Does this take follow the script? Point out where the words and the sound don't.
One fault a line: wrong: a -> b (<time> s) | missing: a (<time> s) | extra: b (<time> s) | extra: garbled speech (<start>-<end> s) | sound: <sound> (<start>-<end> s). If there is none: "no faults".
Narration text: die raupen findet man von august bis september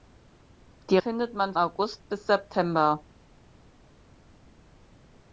missing: raupen (1.0 s)
missing: von (1.5 s)